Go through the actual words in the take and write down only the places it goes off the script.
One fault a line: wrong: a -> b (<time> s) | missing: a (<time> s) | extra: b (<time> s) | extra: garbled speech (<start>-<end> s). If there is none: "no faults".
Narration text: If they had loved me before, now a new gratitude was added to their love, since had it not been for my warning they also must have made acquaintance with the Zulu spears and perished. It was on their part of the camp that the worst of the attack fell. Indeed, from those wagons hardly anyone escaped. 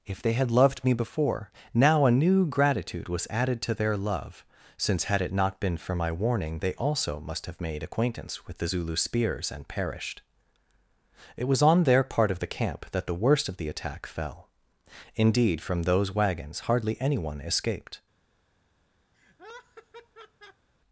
no faults